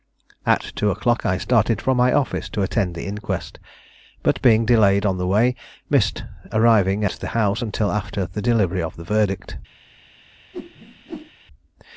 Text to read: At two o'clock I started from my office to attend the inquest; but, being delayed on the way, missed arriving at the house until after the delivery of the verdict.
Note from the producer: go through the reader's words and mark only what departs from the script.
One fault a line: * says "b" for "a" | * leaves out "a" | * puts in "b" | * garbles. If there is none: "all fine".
* leaves out "at"